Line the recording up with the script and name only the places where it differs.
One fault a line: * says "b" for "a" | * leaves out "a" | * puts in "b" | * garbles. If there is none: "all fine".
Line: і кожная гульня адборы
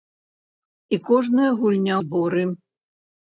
all fine